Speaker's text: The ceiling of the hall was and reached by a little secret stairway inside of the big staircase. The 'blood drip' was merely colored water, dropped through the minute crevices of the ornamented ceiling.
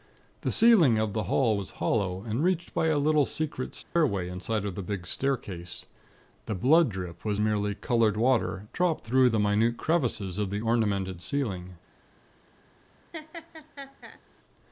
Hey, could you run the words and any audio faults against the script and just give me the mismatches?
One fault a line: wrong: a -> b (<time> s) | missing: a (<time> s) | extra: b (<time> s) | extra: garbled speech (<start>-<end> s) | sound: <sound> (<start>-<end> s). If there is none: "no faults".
extra: hollow (1.8 s)
sound: dropout (3.8-4.0 s)
sound: laugh (13.1-14.2 s)